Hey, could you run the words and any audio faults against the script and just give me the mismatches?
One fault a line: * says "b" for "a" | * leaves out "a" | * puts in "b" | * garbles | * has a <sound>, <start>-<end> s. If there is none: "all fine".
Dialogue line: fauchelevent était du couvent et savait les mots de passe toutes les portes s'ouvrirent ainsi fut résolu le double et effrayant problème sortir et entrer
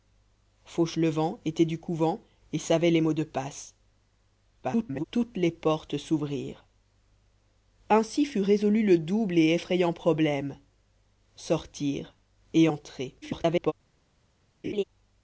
* garbles
* garbles
* has a laugh, 14.6-14.8 s